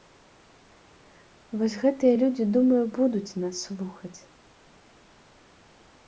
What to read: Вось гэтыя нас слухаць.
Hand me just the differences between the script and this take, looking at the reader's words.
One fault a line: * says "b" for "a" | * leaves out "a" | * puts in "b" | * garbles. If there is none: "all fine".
* puts in "людзі думаю будуць"